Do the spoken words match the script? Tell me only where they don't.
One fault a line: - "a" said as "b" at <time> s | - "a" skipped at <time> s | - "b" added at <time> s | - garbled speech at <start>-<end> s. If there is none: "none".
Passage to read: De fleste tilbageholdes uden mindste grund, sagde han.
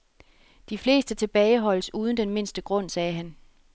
- "den" added at 2.2 s